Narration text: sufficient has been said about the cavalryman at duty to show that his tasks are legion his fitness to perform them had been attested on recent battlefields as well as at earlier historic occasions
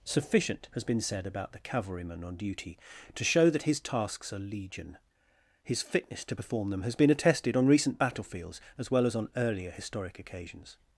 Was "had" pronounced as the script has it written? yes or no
no